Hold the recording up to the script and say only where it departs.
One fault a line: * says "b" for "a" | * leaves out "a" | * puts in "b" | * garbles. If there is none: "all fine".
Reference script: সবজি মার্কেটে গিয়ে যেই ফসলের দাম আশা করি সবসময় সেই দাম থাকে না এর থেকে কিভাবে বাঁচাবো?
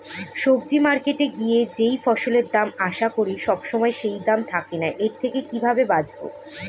all fine